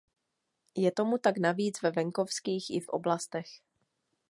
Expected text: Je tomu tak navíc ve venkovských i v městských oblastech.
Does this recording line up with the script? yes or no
no